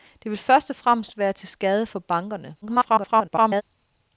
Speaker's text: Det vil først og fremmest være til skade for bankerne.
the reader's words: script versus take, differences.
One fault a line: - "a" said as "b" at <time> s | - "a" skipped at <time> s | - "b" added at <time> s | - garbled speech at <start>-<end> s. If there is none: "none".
- garbled speech at 2.6-3.6 s